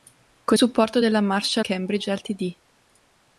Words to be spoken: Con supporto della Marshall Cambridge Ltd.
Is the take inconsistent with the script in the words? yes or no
no